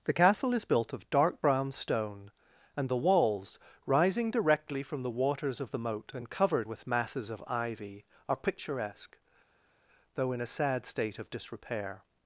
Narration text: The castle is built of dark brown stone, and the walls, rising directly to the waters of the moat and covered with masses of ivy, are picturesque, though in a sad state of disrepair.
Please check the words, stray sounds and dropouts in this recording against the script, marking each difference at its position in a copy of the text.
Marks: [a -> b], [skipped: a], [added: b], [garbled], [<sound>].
The castle is built of dark brown stone, and the walls, rising directly [to -> from] the waters of the moat and covered with masses of ivy, are picturesque, though in a sad state of disrepair.